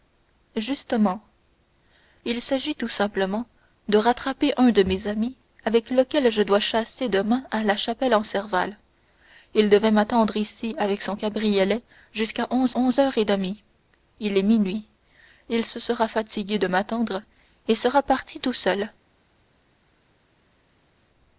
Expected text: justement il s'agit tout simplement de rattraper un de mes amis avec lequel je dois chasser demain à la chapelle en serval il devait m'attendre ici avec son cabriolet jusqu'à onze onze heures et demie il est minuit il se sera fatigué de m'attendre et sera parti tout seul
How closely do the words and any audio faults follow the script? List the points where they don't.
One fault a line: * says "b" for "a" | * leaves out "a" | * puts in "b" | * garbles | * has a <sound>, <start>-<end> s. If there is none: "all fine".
all fine